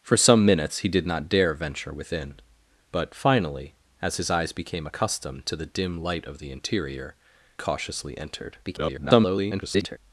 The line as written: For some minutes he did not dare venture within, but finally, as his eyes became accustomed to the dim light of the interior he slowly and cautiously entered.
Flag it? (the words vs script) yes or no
yes